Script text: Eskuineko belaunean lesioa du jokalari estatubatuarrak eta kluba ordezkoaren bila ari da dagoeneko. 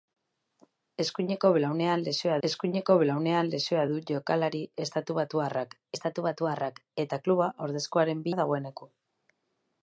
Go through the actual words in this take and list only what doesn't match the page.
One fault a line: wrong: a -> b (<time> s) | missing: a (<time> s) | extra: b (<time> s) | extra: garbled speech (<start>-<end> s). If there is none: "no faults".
extra: eskuineko belaunean lesioa (2.5 s)
extra: estatubatuarrak (6.0 s)
missing: bila ari (8.3 s)